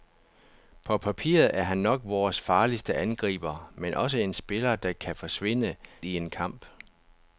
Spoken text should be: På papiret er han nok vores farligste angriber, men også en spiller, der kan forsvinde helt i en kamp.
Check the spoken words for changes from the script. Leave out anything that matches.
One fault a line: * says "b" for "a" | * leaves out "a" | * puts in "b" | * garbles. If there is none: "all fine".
* leaves out "helt"